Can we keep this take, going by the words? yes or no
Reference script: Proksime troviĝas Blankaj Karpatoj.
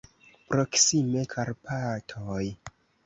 no